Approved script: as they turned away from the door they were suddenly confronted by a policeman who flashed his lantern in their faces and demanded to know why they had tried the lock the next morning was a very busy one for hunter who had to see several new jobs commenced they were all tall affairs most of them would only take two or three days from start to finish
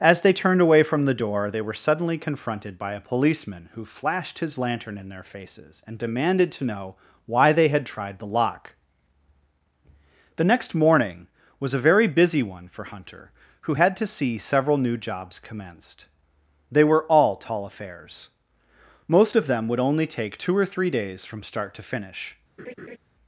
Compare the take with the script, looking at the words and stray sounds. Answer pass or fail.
fail